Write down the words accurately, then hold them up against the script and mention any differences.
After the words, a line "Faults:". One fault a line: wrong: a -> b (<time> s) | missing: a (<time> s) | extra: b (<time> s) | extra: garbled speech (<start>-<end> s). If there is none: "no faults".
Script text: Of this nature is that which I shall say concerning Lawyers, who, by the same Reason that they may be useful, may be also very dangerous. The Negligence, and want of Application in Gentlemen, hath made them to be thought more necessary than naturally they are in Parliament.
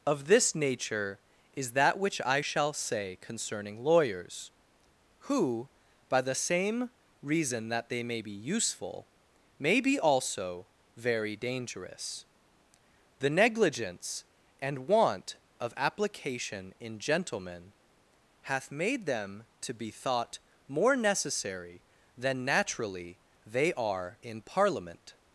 Of this nature is that which I shall say concerning Lawyers, who, by the same Reason that they may be useful, may be also very dangerous. The Negligence, and want of Application in Gentlemen, hath made them to be thought more necessary than naturally they are in Parliament.
Faults:
no faults